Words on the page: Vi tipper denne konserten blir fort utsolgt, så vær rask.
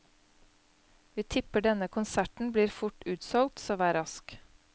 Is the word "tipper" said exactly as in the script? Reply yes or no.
yes